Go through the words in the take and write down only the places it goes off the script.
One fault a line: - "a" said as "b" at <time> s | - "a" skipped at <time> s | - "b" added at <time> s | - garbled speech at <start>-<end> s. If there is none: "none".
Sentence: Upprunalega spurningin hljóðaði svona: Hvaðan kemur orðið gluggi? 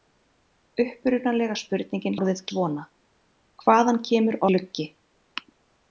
- "hljóðaði" said as "orðið" at 2.2 s
- "orðið" skipped at 4.4 s